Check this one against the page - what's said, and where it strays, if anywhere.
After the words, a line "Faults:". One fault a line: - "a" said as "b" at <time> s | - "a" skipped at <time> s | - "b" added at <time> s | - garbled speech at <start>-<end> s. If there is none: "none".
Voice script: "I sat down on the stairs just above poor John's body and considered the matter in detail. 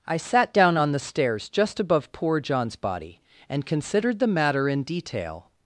"I sat down on the stairs just above poor John's body and considered the matter in detail.
Faults:
none